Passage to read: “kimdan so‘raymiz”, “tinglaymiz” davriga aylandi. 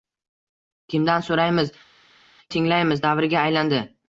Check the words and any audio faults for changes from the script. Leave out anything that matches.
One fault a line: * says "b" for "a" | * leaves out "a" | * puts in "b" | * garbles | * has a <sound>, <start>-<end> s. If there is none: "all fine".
all fine